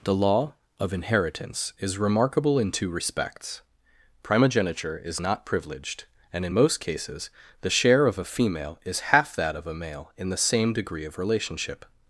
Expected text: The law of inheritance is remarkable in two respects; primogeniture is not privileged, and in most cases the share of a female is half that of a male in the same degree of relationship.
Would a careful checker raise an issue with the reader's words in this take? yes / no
no